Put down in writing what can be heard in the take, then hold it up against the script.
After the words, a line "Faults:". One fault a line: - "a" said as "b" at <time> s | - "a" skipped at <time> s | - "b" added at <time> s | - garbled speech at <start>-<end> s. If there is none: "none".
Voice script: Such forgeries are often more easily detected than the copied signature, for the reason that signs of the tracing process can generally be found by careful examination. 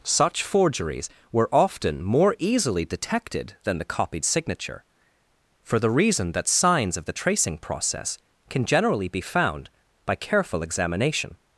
Such forgeries were often more easily detected than the copied signature, for the reason that signs of the tracing process can generally be found by careful examination.
Faults:
- "are" said as "were" at 1.3 s